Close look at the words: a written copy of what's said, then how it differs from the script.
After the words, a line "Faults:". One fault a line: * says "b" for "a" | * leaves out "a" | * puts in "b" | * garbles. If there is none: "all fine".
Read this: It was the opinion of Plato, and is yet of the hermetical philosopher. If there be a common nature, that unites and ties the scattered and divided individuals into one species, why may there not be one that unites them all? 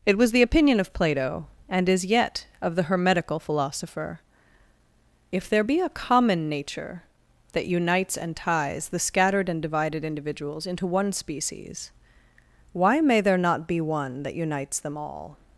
It was the opinion of Plato, and is yet of the hermetical philosopher. If there be a common nature, that unites and ties the scattered and divided individuals into one species, why may there not be one that unites them all?
Faults:
all fine